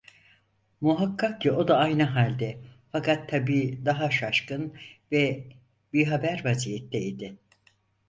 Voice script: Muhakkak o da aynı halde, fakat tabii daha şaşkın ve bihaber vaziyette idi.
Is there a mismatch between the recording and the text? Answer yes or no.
yes